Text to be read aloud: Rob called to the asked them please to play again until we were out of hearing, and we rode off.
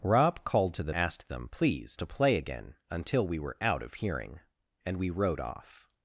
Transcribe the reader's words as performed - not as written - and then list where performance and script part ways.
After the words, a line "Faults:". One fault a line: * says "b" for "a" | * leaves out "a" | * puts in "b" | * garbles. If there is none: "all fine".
Rob called to the asked them please to play again until we were out of hearing, and we rode off.
Faults:
all fine